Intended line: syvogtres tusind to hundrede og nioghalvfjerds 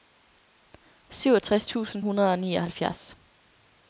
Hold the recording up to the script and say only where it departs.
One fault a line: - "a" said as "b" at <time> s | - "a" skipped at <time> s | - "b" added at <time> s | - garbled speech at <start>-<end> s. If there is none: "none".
- "to" skipped at 2.0 s